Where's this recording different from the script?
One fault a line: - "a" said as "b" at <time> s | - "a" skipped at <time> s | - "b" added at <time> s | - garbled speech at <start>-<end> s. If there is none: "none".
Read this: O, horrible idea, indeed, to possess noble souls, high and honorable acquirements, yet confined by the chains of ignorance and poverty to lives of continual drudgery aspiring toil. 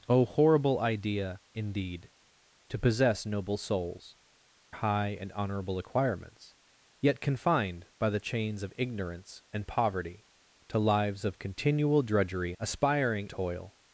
none